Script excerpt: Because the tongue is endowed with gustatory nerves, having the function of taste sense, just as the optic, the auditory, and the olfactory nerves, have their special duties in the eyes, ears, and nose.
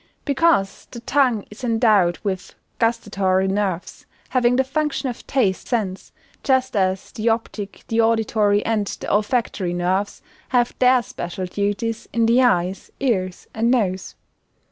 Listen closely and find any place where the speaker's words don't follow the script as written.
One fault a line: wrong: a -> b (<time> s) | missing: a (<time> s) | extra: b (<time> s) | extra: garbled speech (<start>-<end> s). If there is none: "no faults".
no faults